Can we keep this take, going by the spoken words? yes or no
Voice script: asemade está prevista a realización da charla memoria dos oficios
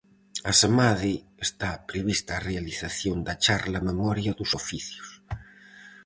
yes